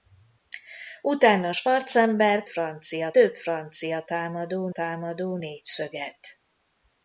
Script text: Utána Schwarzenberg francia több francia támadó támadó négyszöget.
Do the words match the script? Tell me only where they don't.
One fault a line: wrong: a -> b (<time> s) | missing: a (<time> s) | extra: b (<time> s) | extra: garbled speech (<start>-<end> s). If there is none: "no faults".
no faults